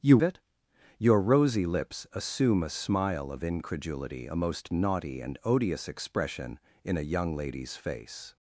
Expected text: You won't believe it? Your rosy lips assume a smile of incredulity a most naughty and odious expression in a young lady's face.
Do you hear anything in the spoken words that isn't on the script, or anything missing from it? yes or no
yes